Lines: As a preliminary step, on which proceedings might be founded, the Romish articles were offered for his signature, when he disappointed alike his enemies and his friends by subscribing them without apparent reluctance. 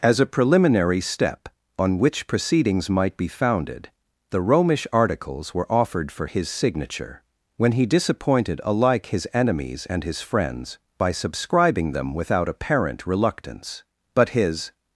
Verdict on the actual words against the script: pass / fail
fail